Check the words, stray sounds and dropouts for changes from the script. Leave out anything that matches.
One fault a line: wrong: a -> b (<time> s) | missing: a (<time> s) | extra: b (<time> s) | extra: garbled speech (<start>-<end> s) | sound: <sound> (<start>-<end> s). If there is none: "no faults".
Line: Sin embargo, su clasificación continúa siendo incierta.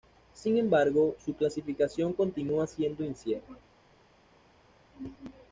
no faults